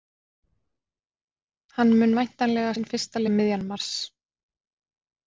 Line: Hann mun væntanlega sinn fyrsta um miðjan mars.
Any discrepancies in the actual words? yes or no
no